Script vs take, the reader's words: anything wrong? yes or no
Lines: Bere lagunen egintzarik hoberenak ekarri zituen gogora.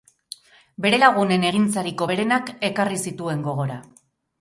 no